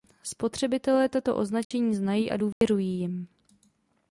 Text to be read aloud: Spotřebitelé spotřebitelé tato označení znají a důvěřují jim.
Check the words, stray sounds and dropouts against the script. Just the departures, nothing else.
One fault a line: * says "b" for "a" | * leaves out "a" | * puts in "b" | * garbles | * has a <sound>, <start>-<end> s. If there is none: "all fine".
* leaves out "spotřebitelé"
* has a dropout, 1.6-1.7 s
* has a dropout, 2.5-2.6 s